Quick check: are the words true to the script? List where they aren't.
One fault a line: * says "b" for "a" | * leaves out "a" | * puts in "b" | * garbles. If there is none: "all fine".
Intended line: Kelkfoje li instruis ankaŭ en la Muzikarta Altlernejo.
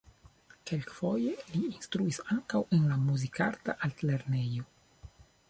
all fine